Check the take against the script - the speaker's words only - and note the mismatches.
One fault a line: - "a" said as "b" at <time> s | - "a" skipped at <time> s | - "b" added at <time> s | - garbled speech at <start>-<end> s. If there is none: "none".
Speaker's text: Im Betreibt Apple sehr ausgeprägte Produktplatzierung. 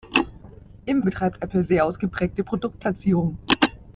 none